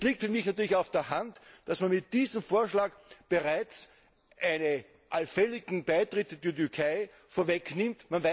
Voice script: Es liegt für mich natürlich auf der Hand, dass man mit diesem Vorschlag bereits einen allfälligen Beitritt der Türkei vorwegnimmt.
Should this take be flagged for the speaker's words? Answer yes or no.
no